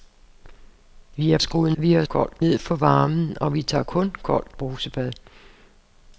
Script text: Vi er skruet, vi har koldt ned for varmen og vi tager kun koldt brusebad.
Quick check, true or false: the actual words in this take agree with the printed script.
true